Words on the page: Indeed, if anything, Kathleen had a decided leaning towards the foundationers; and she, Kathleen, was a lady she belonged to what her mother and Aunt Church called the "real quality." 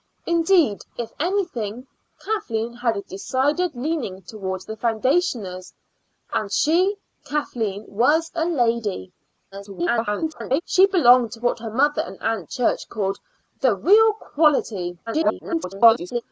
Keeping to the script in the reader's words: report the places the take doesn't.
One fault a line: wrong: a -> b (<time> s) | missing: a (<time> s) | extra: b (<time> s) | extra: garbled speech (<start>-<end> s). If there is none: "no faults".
extra: garbled speech (9.5-10.6 s)
extra: garbled speech (15.1-16.2 s)